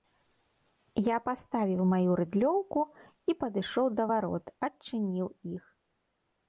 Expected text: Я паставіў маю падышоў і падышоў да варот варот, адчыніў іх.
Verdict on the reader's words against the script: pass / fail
fail